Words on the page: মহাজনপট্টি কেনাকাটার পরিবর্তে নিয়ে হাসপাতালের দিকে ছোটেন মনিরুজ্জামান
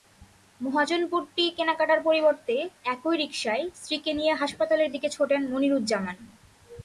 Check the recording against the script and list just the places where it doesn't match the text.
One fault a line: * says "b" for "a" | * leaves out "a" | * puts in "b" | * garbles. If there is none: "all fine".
* puts in "একই রিকশায় স্ত্রীকে"